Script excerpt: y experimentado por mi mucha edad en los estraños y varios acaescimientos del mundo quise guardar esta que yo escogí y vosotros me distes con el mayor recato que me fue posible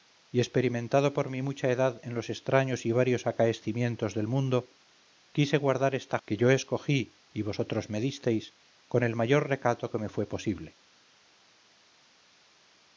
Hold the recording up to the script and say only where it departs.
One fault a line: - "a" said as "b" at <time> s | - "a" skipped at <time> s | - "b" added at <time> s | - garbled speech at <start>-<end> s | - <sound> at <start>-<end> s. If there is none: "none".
none